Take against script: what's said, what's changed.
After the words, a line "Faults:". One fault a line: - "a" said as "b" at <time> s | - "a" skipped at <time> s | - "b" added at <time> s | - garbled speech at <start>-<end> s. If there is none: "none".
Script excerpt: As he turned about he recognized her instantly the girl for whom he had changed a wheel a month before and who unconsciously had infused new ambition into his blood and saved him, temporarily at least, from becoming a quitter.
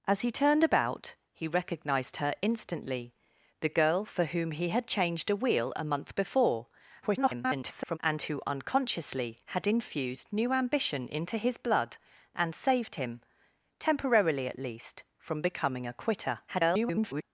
As he turned about he recognized her instantly the girl for whom he had changed a wheel a month before [garbled] and who unconsciously had infused new ambition into his blood and saved him, temporarily at least, from becoming a quitter. [garbled]
Faults:
- garbled speech at 7.0-8.0 s
- garbled speech at 16.5-17.2 s